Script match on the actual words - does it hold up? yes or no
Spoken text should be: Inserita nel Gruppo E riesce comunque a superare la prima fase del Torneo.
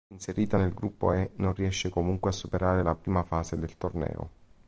no